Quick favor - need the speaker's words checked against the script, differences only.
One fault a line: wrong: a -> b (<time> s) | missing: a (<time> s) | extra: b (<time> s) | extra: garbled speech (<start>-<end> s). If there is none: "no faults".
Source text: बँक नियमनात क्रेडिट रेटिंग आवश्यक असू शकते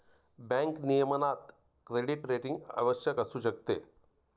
no faults